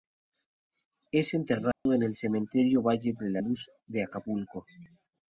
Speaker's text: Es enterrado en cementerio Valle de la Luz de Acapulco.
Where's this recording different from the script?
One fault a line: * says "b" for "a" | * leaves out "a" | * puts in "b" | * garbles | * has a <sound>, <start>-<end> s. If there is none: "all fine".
* has a dropout, 1.7-1.9 s
* puts in "el"